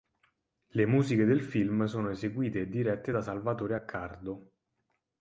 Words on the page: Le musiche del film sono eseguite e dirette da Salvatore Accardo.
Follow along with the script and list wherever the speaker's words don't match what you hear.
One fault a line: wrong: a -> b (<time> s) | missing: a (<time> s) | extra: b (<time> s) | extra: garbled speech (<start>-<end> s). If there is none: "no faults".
no faults